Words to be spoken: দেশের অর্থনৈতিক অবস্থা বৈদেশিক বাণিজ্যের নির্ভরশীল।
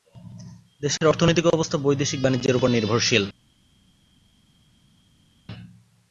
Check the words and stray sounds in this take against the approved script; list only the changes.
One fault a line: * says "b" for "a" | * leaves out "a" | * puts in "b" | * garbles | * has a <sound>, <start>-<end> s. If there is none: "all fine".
* puts in "উপর"